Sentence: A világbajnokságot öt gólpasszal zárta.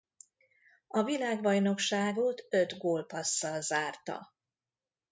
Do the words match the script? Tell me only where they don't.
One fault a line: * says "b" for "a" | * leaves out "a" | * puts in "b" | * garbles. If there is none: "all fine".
all fine